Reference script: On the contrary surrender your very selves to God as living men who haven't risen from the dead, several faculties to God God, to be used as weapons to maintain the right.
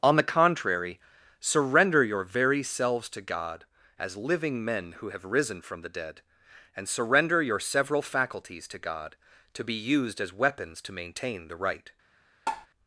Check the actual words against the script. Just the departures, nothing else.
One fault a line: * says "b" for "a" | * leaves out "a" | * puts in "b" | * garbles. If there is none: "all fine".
* says "have" for "haven't"
* puts in "and surrender your"
* leaves out "God"